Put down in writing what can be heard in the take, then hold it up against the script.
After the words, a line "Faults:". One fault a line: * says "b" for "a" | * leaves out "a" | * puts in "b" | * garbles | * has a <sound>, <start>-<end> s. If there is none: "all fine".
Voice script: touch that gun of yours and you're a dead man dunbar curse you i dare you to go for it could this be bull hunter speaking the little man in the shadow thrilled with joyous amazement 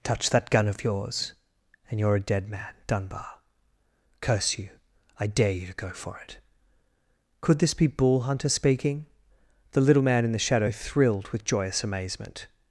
touch that gun of yours and you're a dead man dunbar curse you i dare you to go for it could this be bull hunter speaking the little man in the shadow thrilled with joyous amazement
Faults:
all fine